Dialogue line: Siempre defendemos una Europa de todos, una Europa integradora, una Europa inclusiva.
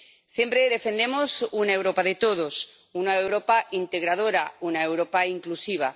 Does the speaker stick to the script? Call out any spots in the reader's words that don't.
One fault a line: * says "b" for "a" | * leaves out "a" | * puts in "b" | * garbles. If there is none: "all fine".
all fine